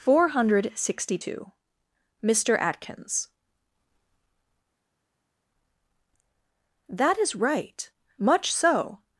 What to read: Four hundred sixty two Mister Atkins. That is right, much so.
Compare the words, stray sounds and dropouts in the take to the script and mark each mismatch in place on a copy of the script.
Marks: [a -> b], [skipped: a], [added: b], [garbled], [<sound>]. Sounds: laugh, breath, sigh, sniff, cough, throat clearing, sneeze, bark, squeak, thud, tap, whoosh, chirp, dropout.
Four hundred sixty two Mister Atkins. That is right, much so.